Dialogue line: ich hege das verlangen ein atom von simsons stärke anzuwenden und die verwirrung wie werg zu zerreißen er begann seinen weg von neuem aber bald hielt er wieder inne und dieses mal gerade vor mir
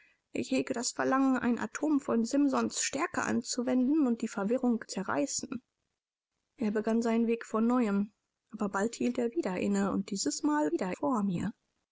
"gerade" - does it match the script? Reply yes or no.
no